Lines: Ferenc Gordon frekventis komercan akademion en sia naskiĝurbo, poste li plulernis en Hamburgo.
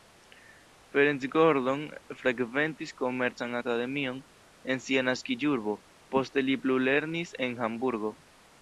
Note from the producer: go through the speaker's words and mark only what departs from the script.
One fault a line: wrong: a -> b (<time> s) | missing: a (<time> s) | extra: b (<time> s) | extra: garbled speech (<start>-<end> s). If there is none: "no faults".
no faults